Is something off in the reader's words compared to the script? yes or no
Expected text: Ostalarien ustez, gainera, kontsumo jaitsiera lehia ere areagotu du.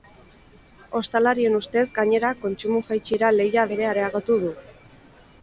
no